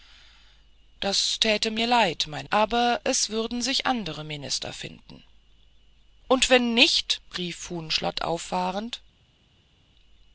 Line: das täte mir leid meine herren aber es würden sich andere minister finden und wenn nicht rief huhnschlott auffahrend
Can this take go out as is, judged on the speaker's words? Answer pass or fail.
fail